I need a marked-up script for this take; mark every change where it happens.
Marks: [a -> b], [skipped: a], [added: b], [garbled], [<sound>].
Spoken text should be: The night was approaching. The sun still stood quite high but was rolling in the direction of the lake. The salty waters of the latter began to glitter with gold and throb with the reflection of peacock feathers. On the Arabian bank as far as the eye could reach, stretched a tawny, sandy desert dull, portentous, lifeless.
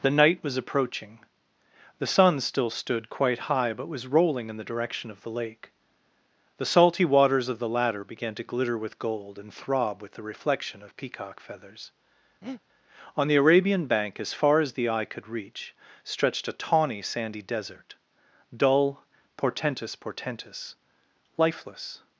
The night was approaching. The sun still stood quite high but was rolling in the direction of the lake. The salty waters of the latter began to glitter with gold and throb with the reflection of peacock feathers. [breath] On the Arabian bank as far as the eye could reach, stretched a tawny, sandy desert dull, portentous, [added: portentous] lifeless.